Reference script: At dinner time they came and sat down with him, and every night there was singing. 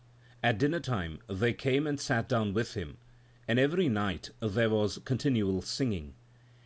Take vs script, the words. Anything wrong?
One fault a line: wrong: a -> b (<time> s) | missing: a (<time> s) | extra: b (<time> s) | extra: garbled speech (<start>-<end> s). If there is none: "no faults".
extra: continual (5.0 s)